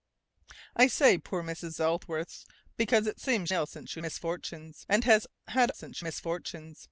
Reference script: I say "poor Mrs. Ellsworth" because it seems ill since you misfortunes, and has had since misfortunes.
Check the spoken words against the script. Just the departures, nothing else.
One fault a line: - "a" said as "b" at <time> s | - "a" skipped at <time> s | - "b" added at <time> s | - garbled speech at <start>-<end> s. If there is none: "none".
none